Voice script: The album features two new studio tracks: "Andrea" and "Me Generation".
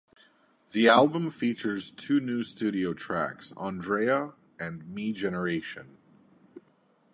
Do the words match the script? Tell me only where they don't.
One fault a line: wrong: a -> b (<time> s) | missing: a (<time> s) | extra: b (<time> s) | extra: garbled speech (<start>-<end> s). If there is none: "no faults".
no faults